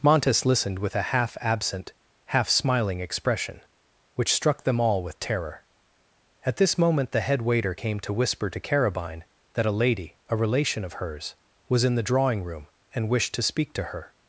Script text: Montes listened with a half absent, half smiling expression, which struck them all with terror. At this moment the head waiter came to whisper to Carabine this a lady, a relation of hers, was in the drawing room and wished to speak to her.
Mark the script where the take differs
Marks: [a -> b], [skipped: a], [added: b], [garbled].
Montes listened with a half absent, half smiling expression, which struck them all with terror. At this moment the head waiter came to whisper to Carabine [this -> that] a lady, a relation of hers, was in the drawing room and wished to speak to her.